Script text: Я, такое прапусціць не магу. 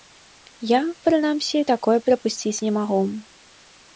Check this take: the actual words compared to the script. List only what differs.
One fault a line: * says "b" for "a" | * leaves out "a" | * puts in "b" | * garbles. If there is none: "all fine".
* puts in "прынамсі"